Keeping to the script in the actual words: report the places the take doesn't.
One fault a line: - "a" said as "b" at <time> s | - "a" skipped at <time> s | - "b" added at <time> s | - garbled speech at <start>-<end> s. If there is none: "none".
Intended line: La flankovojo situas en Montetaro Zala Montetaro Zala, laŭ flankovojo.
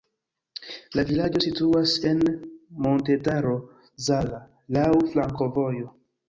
- "flankovojo" said as "vilaĝo" at 1.1 s
- "Montetaro Zala" skipped at 4.4 s